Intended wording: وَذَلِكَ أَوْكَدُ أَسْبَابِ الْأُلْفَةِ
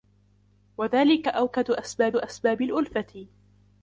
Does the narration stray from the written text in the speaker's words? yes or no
yes